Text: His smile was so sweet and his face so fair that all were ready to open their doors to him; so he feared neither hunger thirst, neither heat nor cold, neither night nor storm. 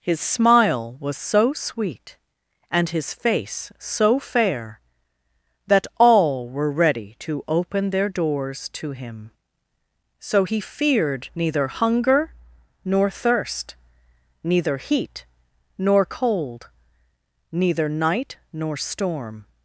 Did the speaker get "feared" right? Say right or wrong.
right